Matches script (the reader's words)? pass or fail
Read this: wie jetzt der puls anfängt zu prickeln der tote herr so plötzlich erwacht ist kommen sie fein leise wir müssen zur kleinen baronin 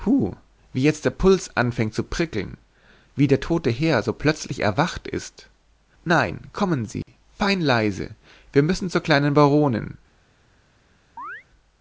fail